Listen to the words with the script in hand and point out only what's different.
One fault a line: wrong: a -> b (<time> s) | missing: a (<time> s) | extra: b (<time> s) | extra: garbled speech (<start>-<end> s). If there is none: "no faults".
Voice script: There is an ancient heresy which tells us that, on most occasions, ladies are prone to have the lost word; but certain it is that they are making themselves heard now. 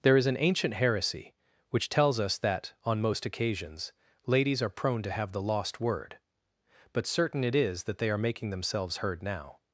no faults